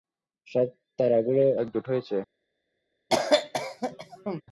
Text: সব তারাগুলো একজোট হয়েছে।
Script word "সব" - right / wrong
right